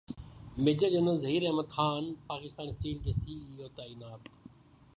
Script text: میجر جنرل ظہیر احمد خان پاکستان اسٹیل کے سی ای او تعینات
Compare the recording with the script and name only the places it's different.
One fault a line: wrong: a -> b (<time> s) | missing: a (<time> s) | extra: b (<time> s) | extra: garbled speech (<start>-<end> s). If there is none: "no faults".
no faults